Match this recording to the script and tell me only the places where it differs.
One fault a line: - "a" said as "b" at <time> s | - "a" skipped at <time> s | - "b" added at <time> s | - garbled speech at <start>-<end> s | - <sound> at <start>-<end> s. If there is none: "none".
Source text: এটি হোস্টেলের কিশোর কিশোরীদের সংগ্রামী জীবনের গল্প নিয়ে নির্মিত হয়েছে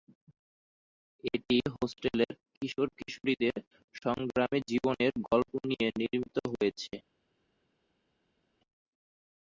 none